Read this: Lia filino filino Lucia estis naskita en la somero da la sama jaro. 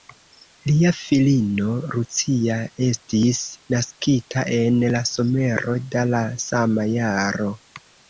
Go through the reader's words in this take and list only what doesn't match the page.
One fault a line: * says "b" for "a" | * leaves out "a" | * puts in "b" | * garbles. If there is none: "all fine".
* leaves out "filino"